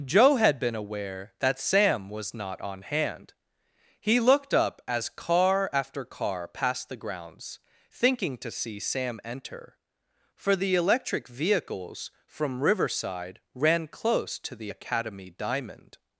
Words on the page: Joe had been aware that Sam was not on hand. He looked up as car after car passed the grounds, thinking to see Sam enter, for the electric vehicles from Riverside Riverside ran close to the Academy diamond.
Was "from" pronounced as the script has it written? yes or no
yes